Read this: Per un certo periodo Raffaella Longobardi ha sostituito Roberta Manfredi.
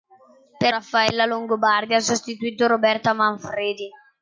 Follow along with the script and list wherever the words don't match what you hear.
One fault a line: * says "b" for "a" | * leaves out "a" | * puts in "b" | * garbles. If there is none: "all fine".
* leaves out "un certo periodo"